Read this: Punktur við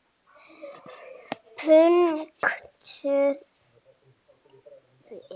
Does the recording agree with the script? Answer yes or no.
yes